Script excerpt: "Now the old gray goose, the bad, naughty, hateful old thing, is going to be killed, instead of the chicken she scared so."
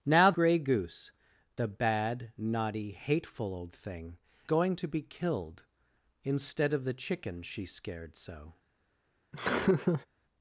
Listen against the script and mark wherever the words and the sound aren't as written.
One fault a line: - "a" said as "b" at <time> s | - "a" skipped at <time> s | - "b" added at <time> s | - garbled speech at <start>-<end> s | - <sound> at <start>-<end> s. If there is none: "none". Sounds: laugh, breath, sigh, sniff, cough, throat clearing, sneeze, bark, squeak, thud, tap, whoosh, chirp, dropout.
- "the old" skipped at 0.3 s
- "is" skipped at 4.2 s
- laugh at 9.3-10.1 s